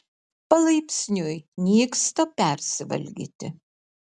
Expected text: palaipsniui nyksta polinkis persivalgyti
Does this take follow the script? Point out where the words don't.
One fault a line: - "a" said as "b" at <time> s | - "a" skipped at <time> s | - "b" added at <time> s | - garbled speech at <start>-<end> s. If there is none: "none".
- "polinkis" skipped at 2.2 s